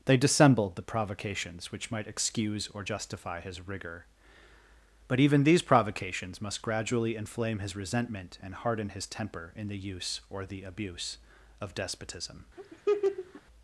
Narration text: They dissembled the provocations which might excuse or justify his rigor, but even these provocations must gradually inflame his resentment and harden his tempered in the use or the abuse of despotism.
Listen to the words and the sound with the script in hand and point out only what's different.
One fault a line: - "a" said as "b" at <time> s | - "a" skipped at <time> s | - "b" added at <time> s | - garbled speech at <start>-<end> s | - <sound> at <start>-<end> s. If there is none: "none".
- "tempered" said as "temper" at 9.1 s
- laugh at 12.6-13.4 s